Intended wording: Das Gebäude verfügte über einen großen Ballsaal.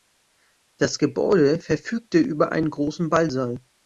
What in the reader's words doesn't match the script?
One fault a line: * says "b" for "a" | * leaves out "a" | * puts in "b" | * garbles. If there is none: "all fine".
all fine